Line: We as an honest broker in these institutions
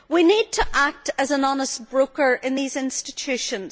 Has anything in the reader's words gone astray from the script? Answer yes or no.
yes